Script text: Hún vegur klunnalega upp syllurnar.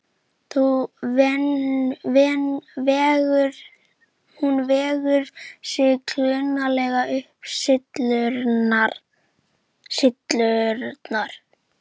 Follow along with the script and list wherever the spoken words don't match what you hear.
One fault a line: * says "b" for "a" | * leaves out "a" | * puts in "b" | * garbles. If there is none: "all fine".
* puts in "sig"